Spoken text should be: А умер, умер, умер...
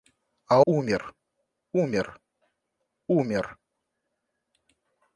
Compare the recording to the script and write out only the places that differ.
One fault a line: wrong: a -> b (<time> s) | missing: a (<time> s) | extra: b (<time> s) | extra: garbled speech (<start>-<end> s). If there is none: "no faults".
no faults